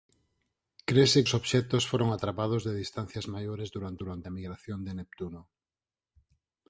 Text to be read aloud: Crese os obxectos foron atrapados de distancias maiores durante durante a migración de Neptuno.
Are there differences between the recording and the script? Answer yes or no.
no